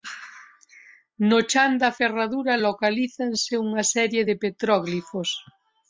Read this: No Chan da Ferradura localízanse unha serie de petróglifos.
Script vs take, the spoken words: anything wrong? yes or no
no